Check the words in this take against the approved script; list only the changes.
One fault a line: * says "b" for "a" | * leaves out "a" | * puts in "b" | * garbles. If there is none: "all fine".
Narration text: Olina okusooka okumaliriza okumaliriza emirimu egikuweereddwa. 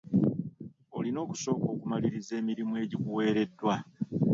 * leaves out "okumaliriza"